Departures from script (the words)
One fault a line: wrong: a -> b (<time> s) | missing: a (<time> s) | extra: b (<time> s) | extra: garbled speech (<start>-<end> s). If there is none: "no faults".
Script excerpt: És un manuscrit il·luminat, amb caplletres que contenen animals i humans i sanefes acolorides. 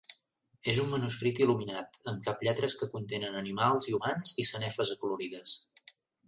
no faults